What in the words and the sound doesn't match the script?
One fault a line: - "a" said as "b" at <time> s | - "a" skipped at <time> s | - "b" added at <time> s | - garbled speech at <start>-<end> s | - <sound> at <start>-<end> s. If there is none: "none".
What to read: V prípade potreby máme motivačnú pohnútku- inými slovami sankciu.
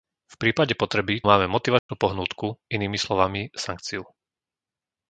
- dropout at 1.8-1.9 s